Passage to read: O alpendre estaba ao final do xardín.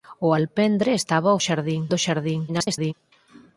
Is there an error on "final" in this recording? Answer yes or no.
yes